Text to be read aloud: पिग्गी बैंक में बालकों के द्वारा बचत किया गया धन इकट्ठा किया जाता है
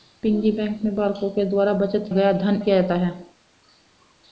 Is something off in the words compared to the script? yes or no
yes